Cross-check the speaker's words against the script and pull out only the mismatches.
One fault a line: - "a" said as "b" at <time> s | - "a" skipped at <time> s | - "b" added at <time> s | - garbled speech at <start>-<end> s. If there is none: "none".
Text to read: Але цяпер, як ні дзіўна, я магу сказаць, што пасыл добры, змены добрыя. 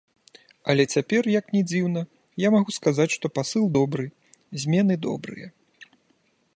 none